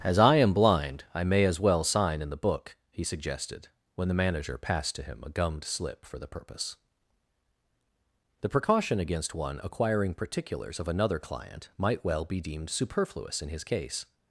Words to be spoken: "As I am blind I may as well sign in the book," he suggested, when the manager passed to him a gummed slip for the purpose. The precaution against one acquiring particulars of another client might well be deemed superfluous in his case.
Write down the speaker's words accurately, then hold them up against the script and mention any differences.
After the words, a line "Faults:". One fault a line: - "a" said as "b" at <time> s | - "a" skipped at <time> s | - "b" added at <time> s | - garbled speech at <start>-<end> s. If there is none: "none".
"As I am blind I may as well sign in the book," he suggested, when the manager passed to him a gummed slip for the purpose. The precaution against one acquiring particulars of another client might well be deemed superfluous in his case.
Faults:
none